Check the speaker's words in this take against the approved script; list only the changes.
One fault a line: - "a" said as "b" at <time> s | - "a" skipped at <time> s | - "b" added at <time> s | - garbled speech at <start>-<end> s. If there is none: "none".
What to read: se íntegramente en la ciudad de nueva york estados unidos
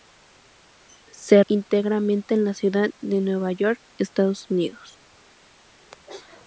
none